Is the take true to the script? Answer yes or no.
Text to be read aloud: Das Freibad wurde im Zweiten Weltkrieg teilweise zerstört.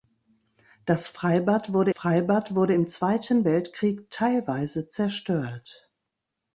no